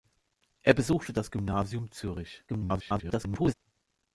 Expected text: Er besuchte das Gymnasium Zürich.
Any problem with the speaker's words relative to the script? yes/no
yes